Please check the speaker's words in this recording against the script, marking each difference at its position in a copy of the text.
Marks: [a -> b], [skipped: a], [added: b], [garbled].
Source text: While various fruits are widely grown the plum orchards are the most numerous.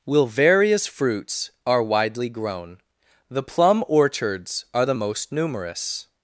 [While -> Will] various fruits are widely grown the plum orchards are the most numerous.